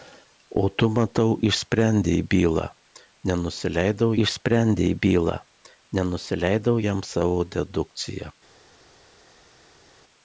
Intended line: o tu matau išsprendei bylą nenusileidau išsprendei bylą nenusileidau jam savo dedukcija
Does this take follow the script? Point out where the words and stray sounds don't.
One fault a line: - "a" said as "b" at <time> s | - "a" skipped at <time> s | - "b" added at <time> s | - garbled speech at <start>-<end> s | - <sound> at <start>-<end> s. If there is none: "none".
none